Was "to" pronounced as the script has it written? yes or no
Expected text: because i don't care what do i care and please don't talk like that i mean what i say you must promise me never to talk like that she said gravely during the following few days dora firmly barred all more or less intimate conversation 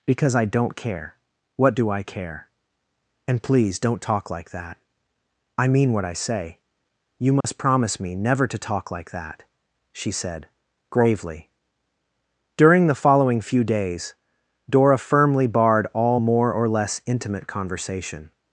yes